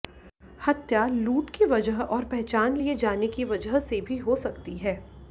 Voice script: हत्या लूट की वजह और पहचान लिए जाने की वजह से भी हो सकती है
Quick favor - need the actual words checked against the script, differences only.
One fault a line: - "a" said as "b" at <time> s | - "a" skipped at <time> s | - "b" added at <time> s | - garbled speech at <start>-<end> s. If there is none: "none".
none